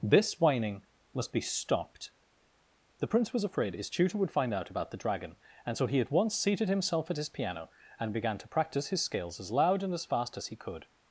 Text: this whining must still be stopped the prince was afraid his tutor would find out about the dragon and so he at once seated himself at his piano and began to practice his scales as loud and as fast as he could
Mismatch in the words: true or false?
true